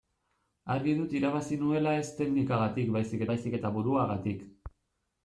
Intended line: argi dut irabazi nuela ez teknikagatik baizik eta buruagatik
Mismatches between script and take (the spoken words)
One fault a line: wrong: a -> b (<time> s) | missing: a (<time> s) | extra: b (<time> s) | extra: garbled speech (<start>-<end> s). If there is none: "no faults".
extra: baizik (3.3 s)